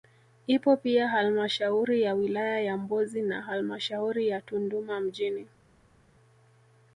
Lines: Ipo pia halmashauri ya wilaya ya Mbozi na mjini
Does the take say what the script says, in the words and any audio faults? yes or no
no